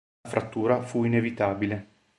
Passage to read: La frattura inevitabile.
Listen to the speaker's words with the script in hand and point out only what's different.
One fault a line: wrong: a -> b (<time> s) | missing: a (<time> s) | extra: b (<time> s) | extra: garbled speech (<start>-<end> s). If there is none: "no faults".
extra: fu (0.8 s)